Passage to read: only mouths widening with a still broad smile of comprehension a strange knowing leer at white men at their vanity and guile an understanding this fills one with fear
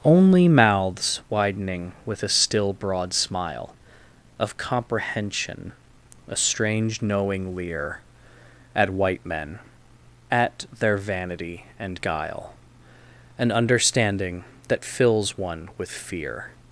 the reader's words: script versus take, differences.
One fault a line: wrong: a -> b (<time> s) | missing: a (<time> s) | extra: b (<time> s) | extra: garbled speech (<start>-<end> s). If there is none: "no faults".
wrong: this -> that (14.7 s)